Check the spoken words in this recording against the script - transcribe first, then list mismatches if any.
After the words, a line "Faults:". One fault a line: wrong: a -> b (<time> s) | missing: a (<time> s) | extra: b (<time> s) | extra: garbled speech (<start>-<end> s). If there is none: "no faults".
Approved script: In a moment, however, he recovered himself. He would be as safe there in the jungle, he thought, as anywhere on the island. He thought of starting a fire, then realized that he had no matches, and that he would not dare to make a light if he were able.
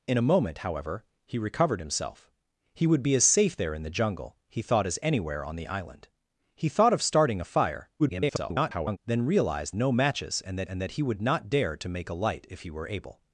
In a moment, however, he recovered himself. He would be as safe there in the jungle, he thought, as anywhere on the island. He thought of starting a fire, [garbled] then realized no matches, and that and that he would not dare to make a light if he were able.
Faults:
extra: garbled speech (8.0-9.0 s)
wrong: that he had no matches -> no matches and that (9.8 s)